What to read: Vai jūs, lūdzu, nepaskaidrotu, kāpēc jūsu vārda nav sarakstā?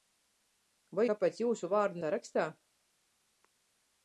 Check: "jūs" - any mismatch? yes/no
yes